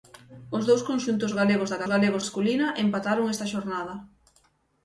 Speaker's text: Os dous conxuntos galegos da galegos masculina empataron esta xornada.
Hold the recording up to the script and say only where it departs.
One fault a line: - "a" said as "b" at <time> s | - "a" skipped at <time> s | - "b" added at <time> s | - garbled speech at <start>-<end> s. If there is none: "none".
none